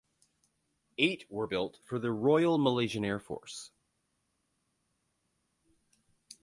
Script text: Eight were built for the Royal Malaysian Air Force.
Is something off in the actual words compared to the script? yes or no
no